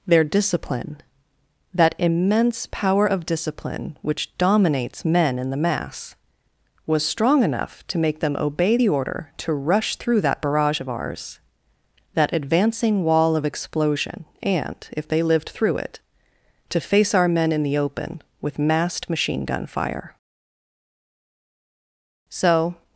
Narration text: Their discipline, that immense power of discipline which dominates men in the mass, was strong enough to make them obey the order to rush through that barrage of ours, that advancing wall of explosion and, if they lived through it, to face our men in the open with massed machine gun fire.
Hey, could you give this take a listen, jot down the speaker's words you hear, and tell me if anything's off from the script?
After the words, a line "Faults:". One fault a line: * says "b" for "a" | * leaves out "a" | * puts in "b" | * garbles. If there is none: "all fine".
Their discipline, that immense power of discipline which dominates men in the mass, was strong enough to make them obey the order to rush through that barrage of ours, that advancing wall of explosion and, if they lived through it, to face our men in the open with massed machine gun fire. So
Faults:
* puts in "So"